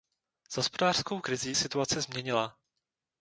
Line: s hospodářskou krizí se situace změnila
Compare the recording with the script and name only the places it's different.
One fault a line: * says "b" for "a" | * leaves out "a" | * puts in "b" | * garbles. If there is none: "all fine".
* leaves out "se"